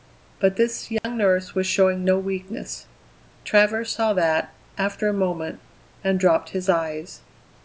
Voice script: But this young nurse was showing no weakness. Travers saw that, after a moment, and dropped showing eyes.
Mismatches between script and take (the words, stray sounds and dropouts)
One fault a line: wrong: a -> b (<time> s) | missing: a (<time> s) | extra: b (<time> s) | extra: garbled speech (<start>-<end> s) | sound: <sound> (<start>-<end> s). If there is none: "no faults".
sound: dropout (1.0-1.0 s)
wrong: showing -> his (6.5 s)